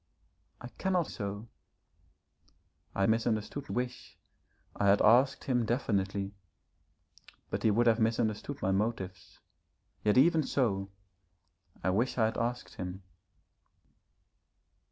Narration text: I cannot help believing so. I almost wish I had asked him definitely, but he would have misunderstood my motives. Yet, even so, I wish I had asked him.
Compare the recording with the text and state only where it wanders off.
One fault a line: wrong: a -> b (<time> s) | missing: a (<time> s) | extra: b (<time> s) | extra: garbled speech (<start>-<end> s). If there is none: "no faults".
missing: help believing (1.1 s)
wrong: almost -> misunderstood (3.1 s)